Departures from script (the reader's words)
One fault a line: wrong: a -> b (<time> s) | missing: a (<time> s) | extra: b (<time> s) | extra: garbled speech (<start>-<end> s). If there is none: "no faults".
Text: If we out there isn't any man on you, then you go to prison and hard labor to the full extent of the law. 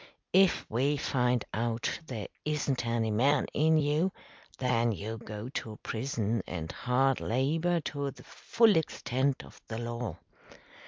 extra: find (1.0 s)
wrong: on -> in (3.5 s)